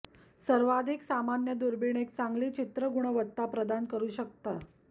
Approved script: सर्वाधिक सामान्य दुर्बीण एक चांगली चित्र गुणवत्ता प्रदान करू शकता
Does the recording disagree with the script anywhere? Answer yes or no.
no